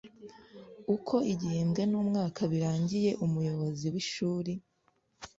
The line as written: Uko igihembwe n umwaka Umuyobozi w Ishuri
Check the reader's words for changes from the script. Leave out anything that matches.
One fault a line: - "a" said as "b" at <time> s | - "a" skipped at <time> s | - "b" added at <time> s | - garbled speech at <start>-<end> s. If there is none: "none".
- "birangiye" added at 2.5 s